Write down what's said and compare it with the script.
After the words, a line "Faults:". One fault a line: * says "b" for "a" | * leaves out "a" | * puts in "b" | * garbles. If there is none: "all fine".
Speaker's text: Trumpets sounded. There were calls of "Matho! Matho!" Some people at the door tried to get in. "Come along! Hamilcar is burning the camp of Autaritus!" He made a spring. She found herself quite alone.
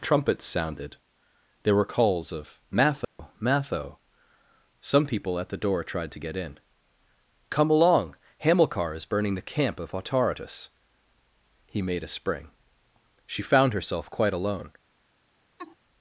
Trumpets sounded. There were calls of "Matho! Matho!" Some people at the door tried to get in. "Come along! Hamilcar is burning the camp of Autaritus!" He made a spring. She found herself quite alone.
Faults:
all fine